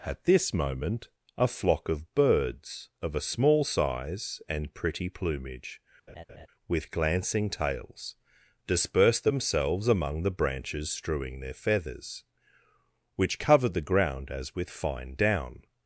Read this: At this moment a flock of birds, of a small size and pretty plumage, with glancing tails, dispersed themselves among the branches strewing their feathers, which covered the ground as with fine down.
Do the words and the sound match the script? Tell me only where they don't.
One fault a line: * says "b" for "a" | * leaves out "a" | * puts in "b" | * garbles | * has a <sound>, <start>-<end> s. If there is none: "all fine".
* has a laugh, 6.1-6.5 s